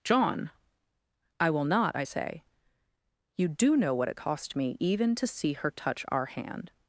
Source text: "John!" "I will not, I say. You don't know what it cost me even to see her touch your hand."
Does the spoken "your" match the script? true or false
false